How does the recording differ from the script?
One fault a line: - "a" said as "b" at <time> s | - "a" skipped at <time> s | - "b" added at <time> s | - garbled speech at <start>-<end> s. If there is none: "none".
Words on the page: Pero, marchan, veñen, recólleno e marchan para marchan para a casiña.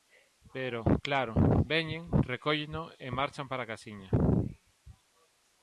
- "marchan" said as "claro" at 1.1 s
- "marchan para" skipped at 3.6 s